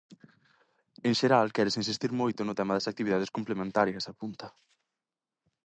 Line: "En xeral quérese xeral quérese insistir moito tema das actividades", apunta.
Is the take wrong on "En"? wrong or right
right